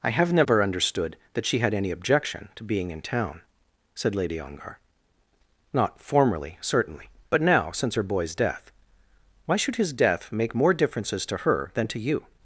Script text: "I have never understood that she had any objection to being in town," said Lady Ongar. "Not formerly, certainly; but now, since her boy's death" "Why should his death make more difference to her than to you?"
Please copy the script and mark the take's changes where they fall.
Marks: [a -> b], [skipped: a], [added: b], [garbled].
"I have never understood that she had any objection to being in town," said Lady Ongar. "Not formerly, certainly; but now, since her boy's death" "Why should his death make more [difference -> differences] to her than to you?"